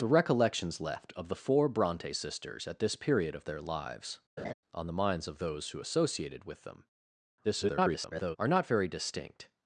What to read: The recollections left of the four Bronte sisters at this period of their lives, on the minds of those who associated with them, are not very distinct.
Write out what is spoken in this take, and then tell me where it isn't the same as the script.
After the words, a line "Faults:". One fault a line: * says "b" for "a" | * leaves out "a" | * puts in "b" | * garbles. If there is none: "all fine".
The recollections left of the four Bronte sisters at this period of their lives, on the minds of those who associated with them, [garbled] are not very distinct.
Faults:
* garbles